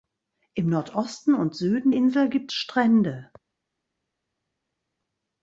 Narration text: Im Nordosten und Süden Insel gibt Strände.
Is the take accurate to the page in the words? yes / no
yes